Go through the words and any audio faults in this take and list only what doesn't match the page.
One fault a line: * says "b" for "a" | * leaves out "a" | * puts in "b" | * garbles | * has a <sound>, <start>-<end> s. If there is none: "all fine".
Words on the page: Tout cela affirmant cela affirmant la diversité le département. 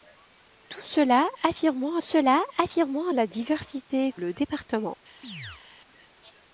* has a chirp, 5.2-5.6 s